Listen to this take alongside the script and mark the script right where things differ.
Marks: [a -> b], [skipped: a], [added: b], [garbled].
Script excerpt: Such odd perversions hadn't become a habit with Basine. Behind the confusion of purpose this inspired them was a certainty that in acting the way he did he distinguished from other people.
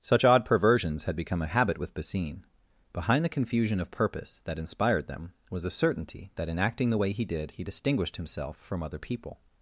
Such odd perversions [hadn't -> had] become a habit with Basine. Behind the confusion of purpose [this -> that] inspired them was a certainty that in acting the way he did he distinguished [added: himself] from other people.